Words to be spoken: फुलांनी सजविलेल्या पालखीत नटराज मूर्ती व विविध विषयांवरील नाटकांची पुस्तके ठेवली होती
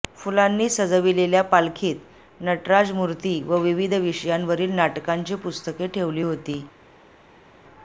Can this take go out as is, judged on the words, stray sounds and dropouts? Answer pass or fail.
pass